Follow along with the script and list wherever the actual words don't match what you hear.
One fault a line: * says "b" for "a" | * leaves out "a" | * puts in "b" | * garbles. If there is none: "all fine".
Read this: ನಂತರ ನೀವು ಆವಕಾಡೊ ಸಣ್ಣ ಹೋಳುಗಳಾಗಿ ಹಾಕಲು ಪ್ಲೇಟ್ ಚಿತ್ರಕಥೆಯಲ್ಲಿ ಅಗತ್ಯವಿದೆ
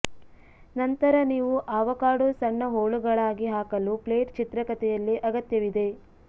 all fine